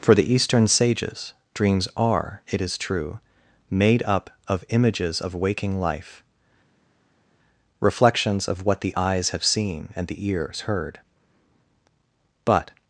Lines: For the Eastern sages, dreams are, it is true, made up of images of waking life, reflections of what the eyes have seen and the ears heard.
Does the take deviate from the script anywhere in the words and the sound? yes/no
yes